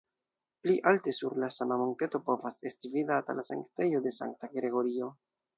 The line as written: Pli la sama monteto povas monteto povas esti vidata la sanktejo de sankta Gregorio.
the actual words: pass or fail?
fail